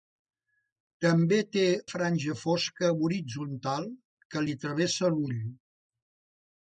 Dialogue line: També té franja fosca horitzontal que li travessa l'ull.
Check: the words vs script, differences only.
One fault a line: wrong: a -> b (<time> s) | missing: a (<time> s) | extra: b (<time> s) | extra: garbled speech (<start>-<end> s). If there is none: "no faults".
no faults